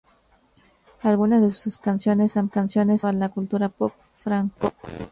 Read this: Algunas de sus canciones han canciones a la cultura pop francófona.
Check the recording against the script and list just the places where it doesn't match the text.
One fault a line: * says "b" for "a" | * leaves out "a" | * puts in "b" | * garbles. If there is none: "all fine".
all fine